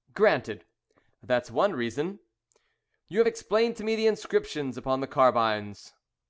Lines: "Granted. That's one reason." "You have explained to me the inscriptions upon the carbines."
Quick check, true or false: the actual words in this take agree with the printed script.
true